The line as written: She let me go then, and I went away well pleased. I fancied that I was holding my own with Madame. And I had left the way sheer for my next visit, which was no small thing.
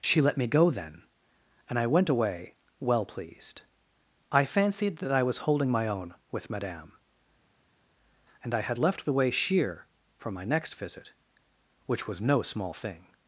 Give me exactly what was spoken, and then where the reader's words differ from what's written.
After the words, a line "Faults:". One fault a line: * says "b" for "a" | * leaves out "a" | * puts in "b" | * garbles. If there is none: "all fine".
She let me go then, and I went away well pleased. I fancied that I was holding my own with Madame. And I had left the way sheer for my next visit, which was no small thing.
Faults:
all fine